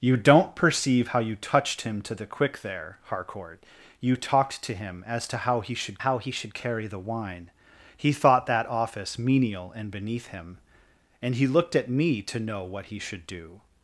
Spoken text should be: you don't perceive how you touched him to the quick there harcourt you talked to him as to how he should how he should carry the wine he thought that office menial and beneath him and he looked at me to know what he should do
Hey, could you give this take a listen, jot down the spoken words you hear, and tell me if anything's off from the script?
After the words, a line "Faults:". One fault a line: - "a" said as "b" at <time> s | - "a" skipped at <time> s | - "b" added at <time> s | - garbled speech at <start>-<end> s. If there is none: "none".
you don't perceive how you touched him to the quick there harcourt you talked to him as to how he should how he should carry the wine he thought that office menial and beneath him and he looked at me to know what he should do
Faults:
none